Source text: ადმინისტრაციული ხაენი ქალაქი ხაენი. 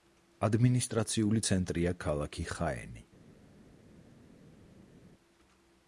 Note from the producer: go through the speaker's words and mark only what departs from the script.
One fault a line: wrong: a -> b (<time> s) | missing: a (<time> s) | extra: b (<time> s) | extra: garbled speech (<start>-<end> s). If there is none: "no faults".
wrong: ხაენი -> ცენტრია (1.5 s)